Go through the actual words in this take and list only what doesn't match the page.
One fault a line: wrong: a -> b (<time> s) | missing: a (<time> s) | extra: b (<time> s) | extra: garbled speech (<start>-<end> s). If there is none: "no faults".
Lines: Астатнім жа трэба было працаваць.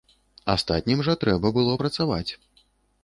no faults